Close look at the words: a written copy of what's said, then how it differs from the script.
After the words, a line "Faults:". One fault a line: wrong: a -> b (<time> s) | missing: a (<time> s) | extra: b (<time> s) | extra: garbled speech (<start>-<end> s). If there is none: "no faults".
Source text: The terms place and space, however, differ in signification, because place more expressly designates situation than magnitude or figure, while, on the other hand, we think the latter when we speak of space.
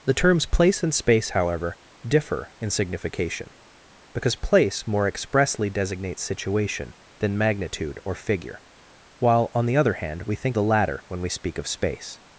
The terms place and space, however, differ in signification, because place more expressly designates situation than magnitude or figure, while, on the other hand, we think the latter when we speak of space.
Faults:
no faults